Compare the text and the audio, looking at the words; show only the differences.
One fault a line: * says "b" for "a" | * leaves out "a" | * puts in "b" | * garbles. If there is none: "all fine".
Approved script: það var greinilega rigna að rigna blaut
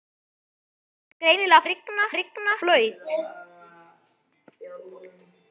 all fine